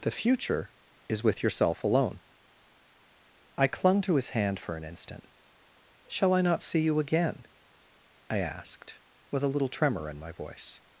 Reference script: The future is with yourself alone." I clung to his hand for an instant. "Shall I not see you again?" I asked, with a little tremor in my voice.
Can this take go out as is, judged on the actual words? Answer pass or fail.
pass